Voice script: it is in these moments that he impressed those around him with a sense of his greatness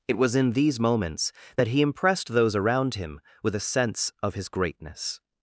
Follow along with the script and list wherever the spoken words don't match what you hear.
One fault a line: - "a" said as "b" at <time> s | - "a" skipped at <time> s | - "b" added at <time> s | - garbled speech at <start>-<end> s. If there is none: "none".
- "is" said as "was" at 0.2 s